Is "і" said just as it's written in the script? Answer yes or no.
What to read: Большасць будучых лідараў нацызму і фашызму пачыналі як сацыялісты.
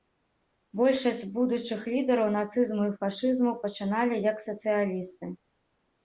yes